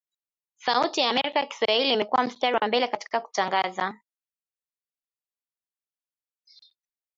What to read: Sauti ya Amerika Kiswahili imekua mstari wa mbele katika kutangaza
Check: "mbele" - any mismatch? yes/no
no